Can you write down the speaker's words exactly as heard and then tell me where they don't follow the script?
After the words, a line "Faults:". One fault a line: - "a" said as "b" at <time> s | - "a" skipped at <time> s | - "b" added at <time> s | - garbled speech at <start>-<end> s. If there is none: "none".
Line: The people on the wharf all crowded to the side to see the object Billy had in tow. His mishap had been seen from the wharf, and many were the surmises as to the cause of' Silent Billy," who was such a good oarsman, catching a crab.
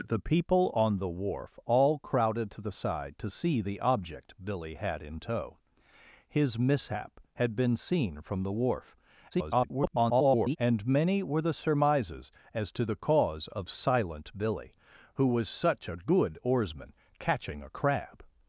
The people on the wharf all crowded to the side to see the object Billy had in tow. His mishap had been seen from the wharf, [garbled] and many were the surmises as to the cause of' Silent Billy," who was such a good oarsman, catching a crab.
Faults:
- garbled speech at 9.3-10.6 s